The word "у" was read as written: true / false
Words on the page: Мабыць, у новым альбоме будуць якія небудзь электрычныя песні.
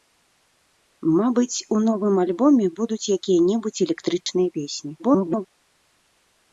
true